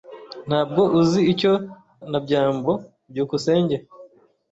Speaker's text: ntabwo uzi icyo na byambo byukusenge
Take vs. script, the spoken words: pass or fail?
pass